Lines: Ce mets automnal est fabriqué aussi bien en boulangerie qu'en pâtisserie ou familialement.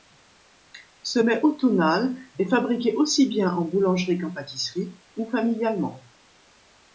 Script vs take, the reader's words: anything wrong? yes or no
no